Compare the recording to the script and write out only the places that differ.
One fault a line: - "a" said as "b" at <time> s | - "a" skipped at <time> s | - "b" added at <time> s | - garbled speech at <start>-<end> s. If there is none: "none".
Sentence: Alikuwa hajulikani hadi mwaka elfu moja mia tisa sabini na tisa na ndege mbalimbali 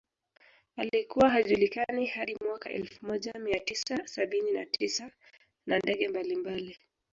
none